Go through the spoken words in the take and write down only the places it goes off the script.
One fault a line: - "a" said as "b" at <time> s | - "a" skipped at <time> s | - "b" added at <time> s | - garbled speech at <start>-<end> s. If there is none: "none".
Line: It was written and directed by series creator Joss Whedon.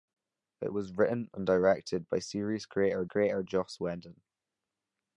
- "creator" added at 3.0 s